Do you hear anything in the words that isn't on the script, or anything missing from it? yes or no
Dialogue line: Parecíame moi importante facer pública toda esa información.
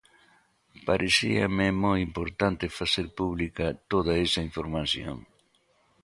no